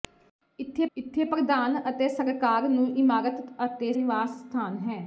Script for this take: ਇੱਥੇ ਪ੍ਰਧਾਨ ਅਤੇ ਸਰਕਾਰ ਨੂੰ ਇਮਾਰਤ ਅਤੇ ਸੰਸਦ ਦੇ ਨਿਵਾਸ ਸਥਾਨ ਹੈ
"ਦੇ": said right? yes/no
no